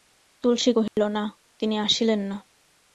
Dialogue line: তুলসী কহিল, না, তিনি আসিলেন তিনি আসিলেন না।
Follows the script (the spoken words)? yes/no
no